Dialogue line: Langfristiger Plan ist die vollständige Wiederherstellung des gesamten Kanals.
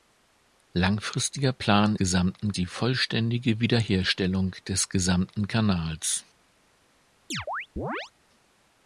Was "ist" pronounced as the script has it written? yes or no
no